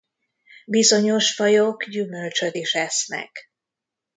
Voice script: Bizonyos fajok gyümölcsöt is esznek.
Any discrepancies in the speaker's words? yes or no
no